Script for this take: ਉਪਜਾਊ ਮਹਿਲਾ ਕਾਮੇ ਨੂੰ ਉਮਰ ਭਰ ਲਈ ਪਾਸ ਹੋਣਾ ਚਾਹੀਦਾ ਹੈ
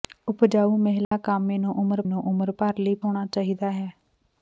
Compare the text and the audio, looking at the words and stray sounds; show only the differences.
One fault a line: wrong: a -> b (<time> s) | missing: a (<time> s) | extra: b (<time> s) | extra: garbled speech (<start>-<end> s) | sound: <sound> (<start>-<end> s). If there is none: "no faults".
sound: dropout (1.0-1.1 s)
extra: ਨੂੰ ਉਮਰ (2.0 s)
missing: ਪਾਸ (2.9 s)